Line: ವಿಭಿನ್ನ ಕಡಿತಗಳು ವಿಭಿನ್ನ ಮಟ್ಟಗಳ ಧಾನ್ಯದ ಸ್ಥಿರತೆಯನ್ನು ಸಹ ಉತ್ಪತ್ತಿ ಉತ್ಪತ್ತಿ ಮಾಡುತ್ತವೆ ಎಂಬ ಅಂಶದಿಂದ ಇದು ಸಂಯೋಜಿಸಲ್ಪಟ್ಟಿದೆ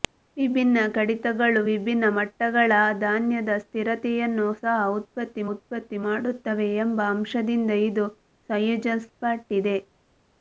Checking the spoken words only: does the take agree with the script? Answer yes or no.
yes